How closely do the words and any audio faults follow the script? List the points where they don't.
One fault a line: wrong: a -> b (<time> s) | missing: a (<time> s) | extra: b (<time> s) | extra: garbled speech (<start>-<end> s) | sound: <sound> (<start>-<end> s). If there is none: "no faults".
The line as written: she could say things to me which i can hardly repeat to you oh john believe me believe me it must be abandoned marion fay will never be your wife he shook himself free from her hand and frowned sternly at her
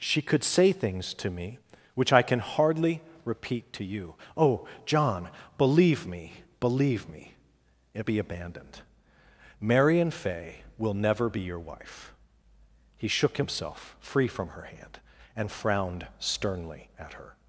missing: must (8.1 s)